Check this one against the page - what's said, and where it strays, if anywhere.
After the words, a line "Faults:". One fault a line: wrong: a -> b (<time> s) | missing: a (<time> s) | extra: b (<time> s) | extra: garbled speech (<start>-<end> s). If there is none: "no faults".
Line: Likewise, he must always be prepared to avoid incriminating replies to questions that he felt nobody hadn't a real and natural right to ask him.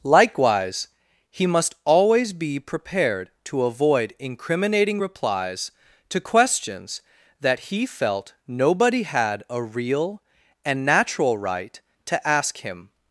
Likewise, he must always be prepared to avoid incriminating replies to questions that he felt nobody had a real and natural right to ask him.
Faults:
wrong: hadn't -> had (9.0 s)